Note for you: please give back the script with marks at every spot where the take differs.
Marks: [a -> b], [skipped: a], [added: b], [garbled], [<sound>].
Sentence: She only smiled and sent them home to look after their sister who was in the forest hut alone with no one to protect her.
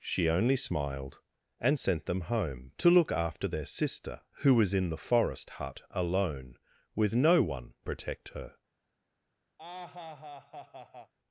She only smiled and sent them home to look after their sister who was in the forest hut alone with no one [skipped: to] protect her. [laugh]